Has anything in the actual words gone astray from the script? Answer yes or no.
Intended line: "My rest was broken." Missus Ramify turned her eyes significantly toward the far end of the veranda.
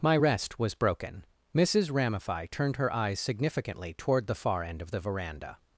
no